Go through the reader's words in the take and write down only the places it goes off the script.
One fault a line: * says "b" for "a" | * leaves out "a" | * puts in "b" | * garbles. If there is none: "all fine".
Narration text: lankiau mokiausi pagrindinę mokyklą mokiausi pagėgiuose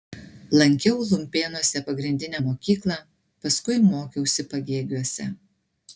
* says "lumpėnuose" for "mokiausi"
* puts in "paskui"